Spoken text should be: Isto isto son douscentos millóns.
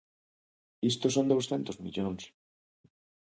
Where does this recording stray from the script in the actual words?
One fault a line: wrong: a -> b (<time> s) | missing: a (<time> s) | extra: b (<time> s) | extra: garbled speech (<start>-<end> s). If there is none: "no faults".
missing: isto (1.1 s)